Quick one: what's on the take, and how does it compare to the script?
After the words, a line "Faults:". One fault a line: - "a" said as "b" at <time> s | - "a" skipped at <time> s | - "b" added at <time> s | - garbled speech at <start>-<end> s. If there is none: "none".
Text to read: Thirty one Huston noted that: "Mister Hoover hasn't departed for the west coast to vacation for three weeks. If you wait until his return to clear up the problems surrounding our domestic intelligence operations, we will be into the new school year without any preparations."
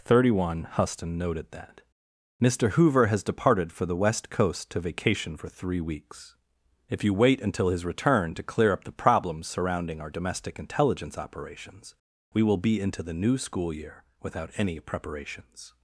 Thirty one Huston noted that: "Mister Hoover has departed for the west coast to vacation for three weeks. If you wait until his return to clear up the problems surrounding our domestic intelligence operations, we will be into the new school year without any preparations."
Faults:
- "hasn't" said as "has" at 3.0 s